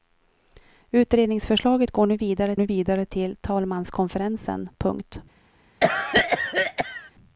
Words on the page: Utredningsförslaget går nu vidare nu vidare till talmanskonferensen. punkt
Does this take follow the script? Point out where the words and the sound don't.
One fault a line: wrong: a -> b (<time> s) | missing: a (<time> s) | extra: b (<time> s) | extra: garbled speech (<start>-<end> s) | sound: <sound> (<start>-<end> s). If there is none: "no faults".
sound: cough (5.8-7.1 s)